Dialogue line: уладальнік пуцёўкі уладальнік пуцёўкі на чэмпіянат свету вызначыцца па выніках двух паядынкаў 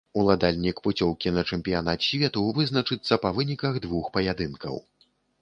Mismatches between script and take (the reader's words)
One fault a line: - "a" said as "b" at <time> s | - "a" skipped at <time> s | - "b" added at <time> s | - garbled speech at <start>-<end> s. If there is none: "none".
- "уладальнік пуцёўкі" skipped at 1.3 s